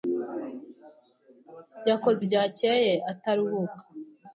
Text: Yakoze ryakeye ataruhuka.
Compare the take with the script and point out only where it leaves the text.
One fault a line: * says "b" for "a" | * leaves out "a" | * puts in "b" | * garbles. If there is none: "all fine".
all fine